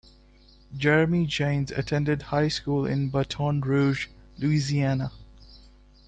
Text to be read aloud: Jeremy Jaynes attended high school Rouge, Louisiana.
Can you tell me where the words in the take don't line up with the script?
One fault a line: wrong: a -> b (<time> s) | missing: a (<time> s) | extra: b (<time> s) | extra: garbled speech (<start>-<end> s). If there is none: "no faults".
extra: in Baton (2.9 s)